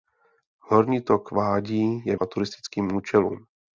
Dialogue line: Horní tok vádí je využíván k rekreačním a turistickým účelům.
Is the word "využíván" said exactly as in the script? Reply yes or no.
no